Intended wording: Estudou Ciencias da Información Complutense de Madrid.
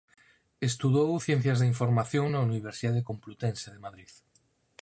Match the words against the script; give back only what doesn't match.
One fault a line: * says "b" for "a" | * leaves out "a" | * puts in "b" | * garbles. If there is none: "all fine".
* puts in "na Universidade"